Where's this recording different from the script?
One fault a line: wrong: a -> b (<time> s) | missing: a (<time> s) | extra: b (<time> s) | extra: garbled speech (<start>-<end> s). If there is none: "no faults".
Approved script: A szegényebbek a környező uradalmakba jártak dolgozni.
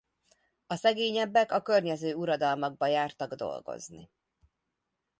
no faults